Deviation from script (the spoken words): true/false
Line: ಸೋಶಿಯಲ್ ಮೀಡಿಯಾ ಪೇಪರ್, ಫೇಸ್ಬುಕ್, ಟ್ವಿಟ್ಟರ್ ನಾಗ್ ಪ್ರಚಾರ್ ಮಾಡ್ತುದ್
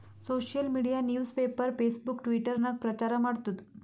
true